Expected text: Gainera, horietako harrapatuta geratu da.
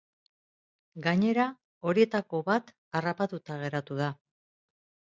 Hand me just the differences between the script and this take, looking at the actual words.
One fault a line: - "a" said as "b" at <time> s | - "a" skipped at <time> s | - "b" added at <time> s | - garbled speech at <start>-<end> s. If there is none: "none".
- "bat" added at 2.5 s